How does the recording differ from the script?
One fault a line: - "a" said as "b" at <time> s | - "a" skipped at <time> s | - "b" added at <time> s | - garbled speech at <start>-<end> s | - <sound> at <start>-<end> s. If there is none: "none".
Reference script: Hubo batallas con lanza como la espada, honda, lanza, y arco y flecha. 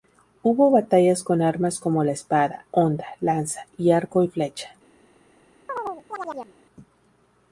- "lanza" said as "armas" at 1.4 s
- chirp at 5.7-6.5 s